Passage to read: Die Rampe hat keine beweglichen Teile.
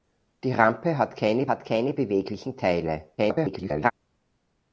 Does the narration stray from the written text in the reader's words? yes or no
yes